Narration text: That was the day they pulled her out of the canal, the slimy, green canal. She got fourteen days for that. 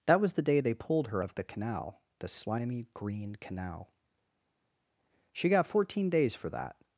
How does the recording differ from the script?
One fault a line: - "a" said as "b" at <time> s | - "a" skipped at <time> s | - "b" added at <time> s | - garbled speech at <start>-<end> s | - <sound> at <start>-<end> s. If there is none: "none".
- "out" skipped at 1.2 s